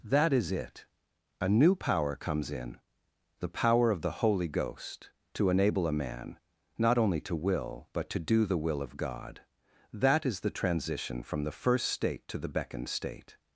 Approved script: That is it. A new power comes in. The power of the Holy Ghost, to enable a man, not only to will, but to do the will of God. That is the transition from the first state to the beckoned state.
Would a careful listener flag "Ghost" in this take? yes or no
no